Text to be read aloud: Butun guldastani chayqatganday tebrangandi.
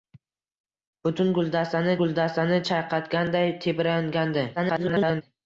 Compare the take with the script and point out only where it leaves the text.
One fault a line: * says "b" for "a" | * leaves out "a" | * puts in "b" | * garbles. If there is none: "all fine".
* puts in "guldastani"
* garbles